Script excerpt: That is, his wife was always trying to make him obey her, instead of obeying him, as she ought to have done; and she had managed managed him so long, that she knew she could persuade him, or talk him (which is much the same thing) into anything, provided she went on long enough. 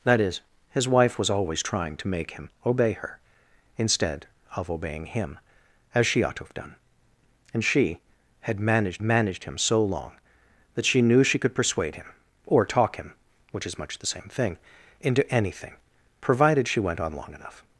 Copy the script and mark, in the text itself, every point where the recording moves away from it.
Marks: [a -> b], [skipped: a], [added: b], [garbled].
That is, his wife was always trying to make him obey her, instead of obeying him, as she ought to have done; and she had managed managed him so long, that she knew she could persuade him, or talk him (which is much the same thing) into anything, provided she went on long enough.